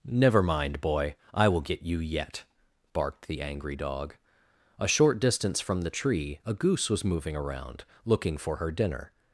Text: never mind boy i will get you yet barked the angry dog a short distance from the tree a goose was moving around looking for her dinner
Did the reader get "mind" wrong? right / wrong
right